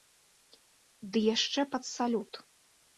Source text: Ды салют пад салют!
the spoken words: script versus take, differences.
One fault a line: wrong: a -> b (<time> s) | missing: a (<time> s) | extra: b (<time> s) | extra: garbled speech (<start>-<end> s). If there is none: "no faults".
wrong: салют -> яшчэ (1.4 s)